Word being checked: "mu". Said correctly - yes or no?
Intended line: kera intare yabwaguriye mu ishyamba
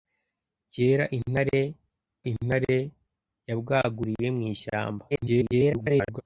yes